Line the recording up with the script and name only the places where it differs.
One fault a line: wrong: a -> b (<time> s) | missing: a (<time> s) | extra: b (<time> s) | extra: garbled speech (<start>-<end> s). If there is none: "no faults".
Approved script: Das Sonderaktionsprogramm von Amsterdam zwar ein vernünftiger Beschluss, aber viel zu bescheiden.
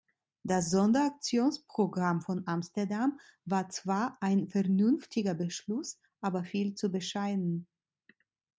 extra: war (3.4 s)